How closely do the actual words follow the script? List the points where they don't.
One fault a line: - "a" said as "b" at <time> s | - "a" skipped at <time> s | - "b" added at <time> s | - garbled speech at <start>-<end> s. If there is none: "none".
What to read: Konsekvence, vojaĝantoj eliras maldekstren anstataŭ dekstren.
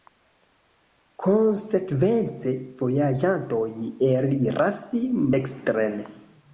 - "maldekstren anstataŭ" skipped at 4.8 s